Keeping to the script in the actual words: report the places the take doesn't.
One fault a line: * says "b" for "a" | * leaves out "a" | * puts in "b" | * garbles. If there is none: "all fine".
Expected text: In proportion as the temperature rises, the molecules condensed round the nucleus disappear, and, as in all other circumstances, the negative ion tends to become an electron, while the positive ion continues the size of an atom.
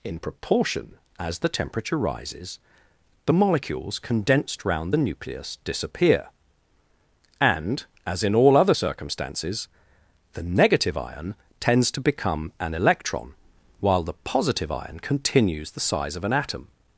all fine